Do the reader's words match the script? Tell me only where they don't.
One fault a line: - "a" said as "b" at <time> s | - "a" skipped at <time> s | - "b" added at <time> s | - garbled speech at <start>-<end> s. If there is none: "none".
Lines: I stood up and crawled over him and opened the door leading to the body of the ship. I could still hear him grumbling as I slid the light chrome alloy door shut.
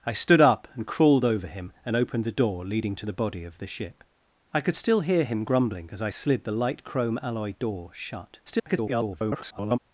- garbled speech at 8.5-9.8 s